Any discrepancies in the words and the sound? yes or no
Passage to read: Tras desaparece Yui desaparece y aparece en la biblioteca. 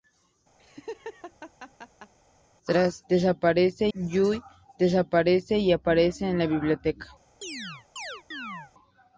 yes